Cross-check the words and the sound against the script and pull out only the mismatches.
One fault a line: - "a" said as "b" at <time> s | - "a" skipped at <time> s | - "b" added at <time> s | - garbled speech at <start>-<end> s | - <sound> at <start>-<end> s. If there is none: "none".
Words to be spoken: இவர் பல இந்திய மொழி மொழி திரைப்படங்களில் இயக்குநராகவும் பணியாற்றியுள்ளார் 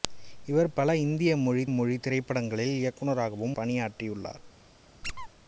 - squeak at 5.0-5.3 s